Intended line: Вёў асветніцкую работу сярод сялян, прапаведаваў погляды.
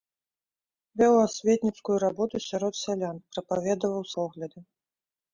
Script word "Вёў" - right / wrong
right